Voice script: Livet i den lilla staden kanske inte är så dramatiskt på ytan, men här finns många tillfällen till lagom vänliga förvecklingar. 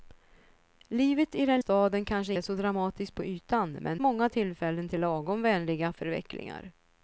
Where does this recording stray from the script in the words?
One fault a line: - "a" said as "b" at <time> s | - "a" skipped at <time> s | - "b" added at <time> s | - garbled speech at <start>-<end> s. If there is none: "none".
- "lilla" skipped at 1.6 s
- "inte" skipped at 2.3 s
- "här finns" skipped at 4.0 s